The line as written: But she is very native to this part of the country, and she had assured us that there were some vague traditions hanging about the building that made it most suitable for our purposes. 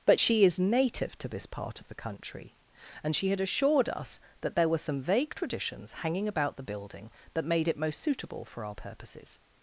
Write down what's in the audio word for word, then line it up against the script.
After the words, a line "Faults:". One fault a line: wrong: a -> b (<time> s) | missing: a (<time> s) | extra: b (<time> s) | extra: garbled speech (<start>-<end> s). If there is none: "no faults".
But she is native to this part of the country, and she had assured us that there were some vague traditions hanging about the building that made it most suitable for our purposes.
Faults:
missing: very (0.6 s)